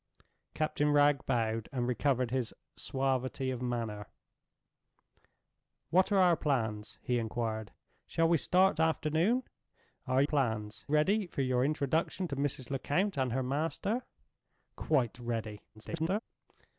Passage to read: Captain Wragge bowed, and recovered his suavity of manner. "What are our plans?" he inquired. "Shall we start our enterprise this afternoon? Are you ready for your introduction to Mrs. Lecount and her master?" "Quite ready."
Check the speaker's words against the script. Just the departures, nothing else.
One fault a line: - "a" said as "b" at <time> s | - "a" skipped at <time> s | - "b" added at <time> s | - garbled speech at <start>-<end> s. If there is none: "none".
- "our enterprise this" skipped at 8.8 s
- "you" said as "plans" at 10.2 s
- garbled speech at 15.7-16.2 s